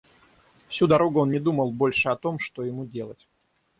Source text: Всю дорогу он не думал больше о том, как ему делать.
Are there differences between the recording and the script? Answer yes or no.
yes